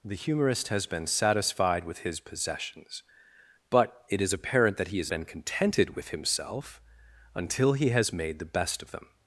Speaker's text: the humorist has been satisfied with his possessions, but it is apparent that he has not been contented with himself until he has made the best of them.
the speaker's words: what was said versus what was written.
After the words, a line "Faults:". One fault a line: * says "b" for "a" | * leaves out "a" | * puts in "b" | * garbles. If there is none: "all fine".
the humorist has been satisfied with his possessions, but it is apparent that he has been contented with himself until he has made the best of them.
Faults:
* leaves out "not"